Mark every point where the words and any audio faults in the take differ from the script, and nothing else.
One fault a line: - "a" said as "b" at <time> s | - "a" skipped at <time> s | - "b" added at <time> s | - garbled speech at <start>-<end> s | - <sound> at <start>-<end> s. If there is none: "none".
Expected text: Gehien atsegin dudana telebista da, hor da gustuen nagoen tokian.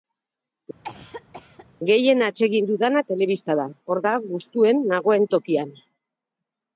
- cough at 0.8-1.7 s